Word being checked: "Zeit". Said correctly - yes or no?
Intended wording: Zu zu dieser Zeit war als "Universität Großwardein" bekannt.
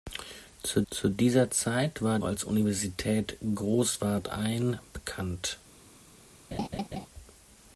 yes